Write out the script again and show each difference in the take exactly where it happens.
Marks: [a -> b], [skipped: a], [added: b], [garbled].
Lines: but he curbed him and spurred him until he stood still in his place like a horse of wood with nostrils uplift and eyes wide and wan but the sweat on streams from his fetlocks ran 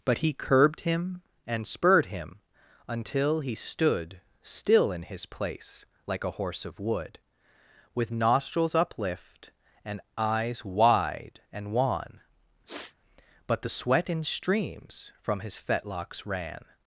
but he curbed him and spurred him until he stood still in his place like a horse of wood with nostrils uplift and eyes wide and wan but the sweat [on -> in] streams from his fetlocks ran